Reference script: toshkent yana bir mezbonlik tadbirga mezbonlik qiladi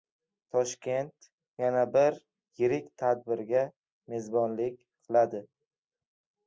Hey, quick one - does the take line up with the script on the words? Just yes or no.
no